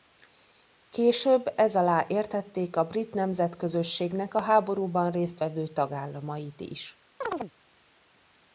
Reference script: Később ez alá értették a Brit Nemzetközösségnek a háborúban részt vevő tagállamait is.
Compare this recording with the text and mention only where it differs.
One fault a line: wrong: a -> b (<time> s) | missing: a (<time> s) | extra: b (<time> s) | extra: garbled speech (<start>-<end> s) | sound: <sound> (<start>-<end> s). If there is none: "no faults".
sound: chirp (7.2-7.5 s)